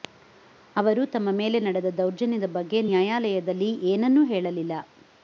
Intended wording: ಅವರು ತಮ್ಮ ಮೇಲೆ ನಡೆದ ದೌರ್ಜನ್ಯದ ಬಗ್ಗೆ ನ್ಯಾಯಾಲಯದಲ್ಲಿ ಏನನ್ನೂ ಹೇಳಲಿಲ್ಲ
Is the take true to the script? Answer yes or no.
yes